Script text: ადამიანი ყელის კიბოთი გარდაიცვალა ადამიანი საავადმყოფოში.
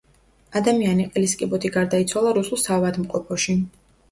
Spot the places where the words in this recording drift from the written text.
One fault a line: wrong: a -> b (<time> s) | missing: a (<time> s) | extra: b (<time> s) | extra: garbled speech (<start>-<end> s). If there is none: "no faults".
wrong: ადამიანი -> რუსულ (2.4 s)